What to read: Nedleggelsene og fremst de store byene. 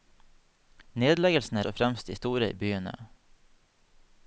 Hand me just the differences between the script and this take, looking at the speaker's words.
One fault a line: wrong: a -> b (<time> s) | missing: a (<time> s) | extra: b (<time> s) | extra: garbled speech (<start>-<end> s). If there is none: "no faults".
no faults